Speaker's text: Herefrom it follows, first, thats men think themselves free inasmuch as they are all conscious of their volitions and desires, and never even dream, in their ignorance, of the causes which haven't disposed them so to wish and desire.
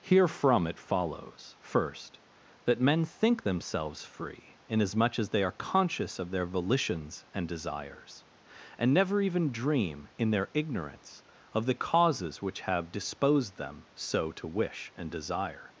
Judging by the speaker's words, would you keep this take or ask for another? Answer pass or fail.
fail